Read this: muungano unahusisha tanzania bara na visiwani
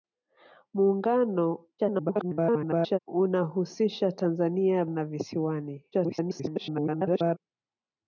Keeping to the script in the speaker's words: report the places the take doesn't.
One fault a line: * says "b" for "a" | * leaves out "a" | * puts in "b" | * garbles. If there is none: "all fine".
* garbles
* leaves out "bara"
* garbles